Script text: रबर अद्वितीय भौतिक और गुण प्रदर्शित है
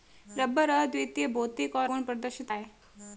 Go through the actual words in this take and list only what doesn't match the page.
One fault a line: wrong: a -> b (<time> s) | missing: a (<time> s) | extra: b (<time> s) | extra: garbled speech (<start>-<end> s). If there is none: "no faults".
no faults